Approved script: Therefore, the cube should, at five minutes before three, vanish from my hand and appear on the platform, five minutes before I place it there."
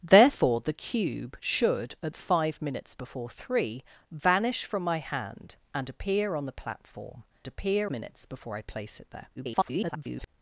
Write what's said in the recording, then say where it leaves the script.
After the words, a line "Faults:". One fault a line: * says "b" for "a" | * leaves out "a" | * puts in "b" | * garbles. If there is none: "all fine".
Therefore, the cube should, at five minutes before three, vanish from my hand and appear on the platform, appear minutes before I place it there." [garbled]
Faults:
* says "appear" for "five"
* garbles